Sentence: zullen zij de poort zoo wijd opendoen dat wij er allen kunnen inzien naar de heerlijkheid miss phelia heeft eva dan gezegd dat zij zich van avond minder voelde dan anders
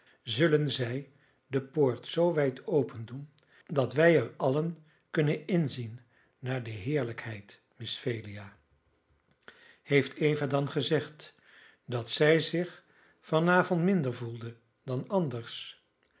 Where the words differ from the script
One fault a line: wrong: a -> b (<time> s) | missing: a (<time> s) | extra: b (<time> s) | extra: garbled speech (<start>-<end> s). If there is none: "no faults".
no faults